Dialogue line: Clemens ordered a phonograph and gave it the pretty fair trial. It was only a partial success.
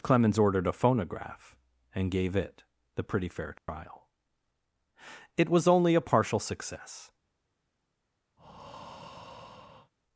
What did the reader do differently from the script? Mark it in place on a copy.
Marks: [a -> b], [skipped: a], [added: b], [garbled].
Clemens ordered a phonograph and gave it the pretty fair trial. It was only a partial success.